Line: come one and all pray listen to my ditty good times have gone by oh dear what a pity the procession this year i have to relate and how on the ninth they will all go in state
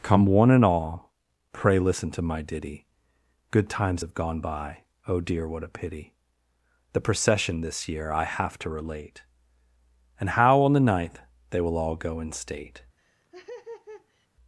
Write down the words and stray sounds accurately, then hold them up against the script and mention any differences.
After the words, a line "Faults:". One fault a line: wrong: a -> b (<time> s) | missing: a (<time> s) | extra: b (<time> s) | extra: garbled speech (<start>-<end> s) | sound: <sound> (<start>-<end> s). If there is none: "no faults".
come one and all pray listen to my ditty good times have gone by oh dear what a pity the procession this year i have to relate and how on the ninth they will all go in state
Faults:
sound: laugh (13.0-14.3 s)